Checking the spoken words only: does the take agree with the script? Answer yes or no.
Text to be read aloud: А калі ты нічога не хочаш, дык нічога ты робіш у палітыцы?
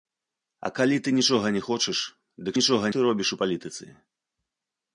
yes